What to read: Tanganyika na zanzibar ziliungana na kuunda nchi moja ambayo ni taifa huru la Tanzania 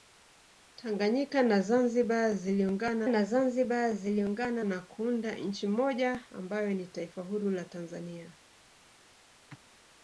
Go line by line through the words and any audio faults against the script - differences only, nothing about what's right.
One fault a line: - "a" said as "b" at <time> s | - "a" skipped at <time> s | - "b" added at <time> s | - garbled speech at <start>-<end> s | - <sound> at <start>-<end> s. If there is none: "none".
- "zanzibar ziliungana na" added at 3.2 s